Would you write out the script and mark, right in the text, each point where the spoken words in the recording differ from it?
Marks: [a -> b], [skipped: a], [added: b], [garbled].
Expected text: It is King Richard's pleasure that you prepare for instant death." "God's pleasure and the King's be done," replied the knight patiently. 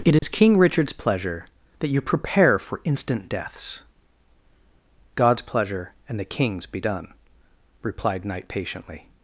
It is King Richard's pleasure that you prepare for instant [death." -> deaths] "God's pleasure and the King's be done," replied [skipped: the] knight patiently.